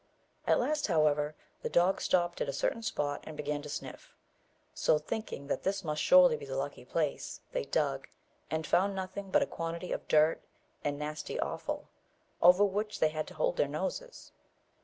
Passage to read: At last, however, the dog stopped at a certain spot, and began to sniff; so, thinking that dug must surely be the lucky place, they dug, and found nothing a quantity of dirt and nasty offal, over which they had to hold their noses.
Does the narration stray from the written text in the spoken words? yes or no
yes